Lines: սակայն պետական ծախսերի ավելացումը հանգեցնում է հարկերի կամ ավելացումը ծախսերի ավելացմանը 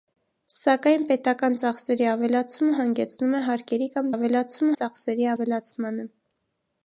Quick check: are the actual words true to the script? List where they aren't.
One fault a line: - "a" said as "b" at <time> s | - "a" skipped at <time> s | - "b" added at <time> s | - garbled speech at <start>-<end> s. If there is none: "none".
none